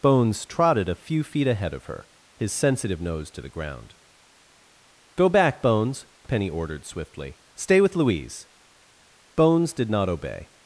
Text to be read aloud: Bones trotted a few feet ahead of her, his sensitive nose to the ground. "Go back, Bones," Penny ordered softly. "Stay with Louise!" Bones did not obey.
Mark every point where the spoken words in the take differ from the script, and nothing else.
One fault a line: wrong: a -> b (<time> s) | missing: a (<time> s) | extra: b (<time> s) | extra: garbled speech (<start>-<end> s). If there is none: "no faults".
wrong: softly -> swiftly (6.8 s)